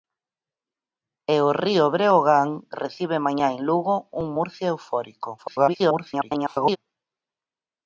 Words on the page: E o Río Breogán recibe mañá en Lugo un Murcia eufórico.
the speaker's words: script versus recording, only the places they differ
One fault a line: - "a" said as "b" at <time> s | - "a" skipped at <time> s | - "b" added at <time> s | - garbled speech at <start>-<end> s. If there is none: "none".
- garbled speech at 5.4-6.8 s